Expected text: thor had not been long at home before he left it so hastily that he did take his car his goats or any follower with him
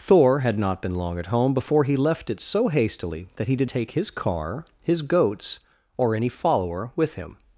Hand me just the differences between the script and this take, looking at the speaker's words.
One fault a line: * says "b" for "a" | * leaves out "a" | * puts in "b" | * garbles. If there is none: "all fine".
all fine